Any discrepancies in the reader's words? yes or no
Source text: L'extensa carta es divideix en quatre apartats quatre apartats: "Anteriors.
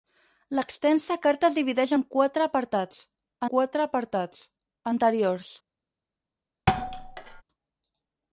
no